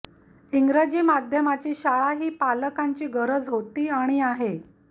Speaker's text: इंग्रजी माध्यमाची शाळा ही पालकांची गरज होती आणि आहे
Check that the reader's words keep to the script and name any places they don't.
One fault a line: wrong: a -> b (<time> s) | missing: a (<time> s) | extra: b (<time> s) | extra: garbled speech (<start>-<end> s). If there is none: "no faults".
no faults